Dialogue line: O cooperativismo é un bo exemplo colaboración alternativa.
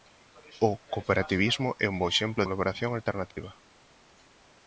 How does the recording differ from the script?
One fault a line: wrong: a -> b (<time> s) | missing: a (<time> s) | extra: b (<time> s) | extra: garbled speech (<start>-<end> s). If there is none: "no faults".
no faults